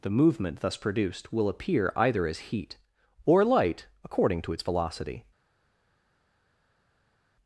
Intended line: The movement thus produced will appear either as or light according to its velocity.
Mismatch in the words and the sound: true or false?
true